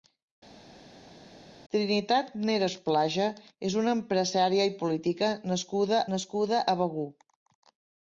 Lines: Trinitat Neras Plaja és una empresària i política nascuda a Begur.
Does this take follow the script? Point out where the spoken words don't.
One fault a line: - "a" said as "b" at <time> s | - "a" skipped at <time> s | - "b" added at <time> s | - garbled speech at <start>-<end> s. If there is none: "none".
- "nascuda" added at 6.2 s